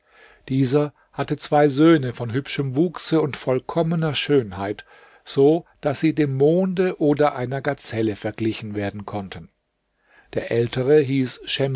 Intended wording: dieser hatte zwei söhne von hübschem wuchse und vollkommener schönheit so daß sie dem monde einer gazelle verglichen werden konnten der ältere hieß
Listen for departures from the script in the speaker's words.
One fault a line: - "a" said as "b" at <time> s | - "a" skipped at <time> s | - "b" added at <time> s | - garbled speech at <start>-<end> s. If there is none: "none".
- "oder" added at 7.0 s